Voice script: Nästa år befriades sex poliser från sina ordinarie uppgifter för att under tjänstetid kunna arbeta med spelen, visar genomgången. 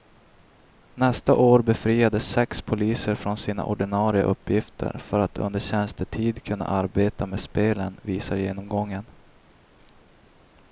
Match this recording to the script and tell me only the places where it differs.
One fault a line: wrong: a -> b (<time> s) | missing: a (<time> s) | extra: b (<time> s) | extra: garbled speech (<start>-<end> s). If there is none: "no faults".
no faults